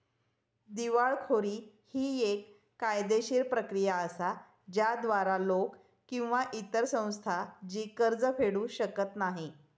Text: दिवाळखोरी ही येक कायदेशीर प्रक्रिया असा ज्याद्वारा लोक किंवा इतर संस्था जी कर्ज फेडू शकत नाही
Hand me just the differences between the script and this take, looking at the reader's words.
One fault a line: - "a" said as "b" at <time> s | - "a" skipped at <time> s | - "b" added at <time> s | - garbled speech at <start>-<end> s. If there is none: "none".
none